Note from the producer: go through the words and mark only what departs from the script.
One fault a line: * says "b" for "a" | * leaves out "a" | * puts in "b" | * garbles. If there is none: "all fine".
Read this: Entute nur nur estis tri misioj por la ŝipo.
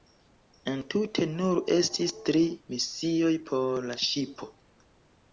* leaves out "nur"